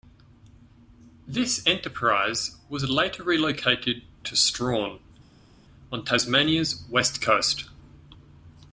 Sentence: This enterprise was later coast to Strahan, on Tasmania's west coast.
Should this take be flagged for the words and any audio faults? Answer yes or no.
yes